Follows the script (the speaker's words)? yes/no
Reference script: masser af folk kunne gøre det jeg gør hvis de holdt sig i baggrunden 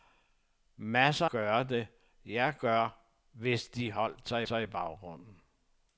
no